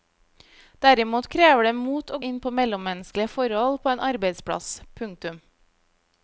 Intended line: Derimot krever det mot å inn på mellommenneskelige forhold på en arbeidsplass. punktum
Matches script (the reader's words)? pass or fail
pass